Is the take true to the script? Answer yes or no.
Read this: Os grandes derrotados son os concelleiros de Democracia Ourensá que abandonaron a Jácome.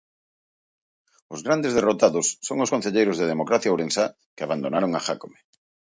yes